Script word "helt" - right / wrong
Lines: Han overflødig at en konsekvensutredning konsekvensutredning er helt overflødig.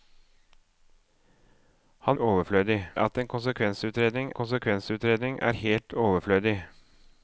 right